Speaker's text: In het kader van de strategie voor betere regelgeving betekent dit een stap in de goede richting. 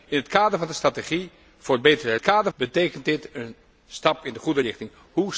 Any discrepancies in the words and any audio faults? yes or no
yes